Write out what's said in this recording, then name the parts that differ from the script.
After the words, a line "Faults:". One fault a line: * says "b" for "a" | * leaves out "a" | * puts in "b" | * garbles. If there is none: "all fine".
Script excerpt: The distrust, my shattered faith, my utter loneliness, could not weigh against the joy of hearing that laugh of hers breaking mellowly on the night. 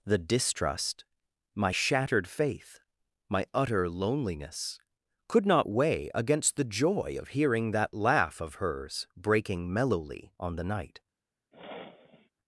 The distrust, my shattered faith, my utter loneliness, could not weigh against the joy of hearing that laugh of hers breaking mellowly on the night.
Faults:
all fine